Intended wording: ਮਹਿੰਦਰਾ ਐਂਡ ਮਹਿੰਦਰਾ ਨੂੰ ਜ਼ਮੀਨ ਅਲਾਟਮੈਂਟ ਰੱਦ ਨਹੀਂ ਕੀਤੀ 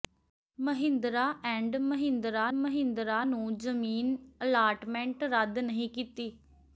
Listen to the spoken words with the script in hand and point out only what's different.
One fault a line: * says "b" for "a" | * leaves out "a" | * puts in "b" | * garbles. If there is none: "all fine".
* puts in "ਮਹਿੰਦਰਾ"